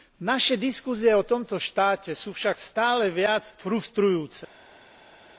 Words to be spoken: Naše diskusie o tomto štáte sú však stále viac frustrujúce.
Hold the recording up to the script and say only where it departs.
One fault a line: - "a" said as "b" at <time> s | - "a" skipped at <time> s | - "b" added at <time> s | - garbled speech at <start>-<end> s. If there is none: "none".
none